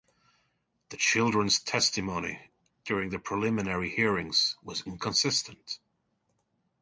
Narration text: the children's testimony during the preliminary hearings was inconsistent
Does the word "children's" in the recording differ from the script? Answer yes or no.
no